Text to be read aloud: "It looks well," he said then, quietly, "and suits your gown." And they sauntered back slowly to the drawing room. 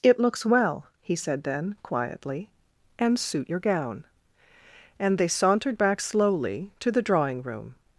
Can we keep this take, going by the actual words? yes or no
no